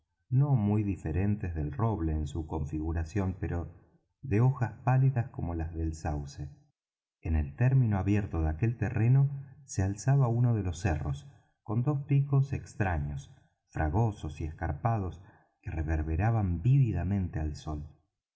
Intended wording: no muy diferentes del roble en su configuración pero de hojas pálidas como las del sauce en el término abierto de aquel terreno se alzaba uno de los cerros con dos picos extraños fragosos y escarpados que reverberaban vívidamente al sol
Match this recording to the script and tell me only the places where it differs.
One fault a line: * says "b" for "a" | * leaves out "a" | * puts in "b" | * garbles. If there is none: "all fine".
all fine